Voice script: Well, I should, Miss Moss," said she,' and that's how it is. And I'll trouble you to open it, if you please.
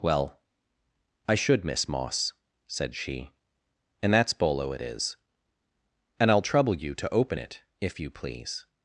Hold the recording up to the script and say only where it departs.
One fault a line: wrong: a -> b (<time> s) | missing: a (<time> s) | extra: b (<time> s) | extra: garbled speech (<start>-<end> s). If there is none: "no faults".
wrong: how -> bolo (4.3 s)